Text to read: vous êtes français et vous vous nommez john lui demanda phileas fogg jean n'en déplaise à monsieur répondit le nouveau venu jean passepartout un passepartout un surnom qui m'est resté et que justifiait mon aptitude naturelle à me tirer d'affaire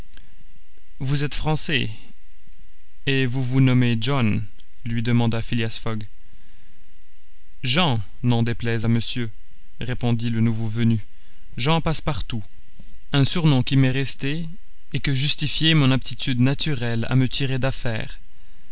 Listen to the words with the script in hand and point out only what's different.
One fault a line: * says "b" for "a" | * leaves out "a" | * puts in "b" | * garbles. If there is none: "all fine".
* leaves out "passepartout un"